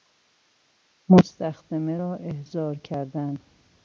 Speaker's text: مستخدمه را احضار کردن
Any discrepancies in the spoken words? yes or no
no